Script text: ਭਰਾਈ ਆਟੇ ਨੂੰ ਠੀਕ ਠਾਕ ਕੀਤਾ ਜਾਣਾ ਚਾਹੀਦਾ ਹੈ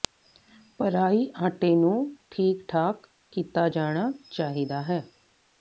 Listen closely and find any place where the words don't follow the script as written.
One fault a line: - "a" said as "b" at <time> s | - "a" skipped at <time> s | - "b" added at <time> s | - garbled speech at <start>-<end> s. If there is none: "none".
none